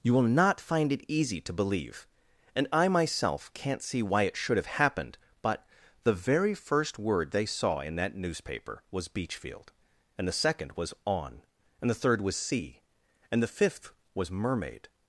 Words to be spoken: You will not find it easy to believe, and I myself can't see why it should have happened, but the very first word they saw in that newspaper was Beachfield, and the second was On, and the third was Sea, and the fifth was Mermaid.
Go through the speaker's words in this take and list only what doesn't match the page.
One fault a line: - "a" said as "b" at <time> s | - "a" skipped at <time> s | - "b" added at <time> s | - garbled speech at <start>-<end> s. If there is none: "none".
none